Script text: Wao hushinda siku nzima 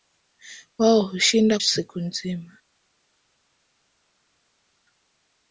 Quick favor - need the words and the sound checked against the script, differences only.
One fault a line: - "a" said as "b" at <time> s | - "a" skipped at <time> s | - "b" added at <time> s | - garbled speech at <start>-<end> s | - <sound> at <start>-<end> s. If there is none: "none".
none